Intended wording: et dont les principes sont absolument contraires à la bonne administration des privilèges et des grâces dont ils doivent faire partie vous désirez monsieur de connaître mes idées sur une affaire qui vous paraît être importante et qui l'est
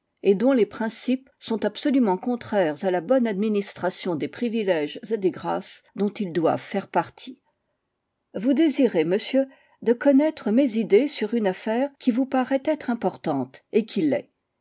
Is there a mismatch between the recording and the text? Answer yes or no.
no